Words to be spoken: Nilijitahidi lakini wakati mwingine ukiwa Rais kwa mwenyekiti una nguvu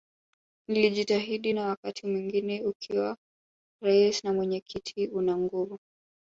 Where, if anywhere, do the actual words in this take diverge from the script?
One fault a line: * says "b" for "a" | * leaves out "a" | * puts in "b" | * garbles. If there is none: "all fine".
* says "na" for "lakini"
* says "na" for "kwa"